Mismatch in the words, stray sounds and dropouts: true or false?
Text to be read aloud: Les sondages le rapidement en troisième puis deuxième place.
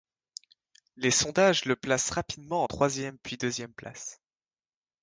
true